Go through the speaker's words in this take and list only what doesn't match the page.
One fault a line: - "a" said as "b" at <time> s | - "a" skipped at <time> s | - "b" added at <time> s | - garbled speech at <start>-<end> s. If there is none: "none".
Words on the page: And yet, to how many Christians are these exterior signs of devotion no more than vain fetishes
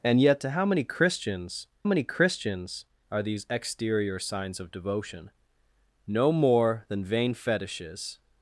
- "many Christians" added at 1.8 s